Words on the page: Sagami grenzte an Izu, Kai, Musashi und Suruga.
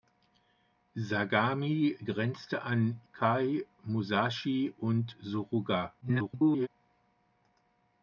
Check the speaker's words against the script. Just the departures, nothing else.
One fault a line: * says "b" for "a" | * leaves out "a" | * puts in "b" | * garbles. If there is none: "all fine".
* leaves out "Izu"
* garbles